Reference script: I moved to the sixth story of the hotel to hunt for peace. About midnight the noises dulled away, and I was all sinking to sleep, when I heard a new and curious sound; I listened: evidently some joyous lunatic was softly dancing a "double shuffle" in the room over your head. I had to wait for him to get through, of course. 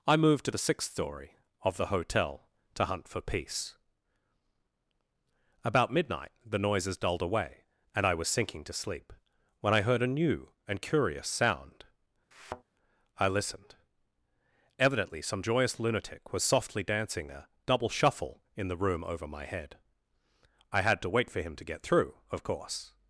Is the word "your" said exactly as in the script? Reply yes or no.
no